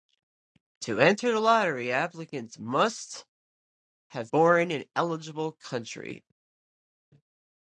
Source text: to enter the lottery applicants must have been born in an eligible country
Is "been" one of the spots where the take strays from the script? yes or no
yes